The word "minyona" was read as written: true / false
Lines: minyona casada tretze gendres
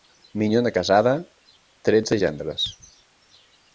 true